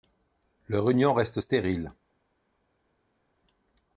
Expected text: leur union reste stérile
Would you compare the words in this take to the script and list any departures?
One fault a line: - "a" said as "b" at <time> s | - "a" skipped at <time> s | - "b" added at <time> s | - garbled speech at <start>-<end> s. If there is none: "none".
none